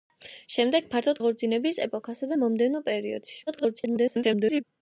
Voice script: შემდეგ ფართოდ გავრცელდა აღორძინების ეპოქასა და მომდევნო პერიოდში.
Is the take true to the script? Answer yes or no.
no